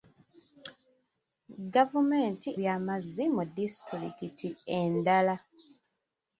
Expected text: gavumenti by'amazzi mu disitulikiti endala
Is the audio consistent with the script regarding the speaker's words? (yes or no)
yes